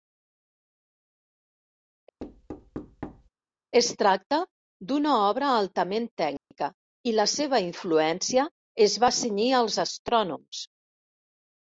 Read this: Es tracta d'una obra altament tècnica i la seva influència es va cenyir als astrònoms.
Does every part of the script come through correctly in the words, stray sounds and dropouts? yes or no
no